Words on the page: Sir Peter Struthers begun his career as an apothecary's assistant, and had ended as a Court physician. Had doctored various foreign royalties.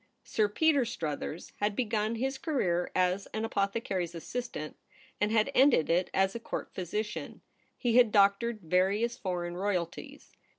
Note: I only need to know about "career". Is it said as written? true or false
true